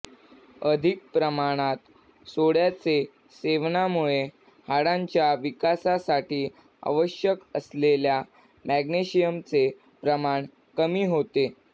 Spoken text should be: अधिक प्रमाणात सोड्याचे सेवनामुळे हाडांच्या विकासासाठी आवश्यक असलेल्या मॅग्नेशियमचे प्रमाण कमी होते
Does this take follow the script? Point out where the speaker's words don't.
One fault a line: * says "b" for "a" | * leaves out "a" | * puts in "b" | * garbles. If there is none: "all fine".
all fine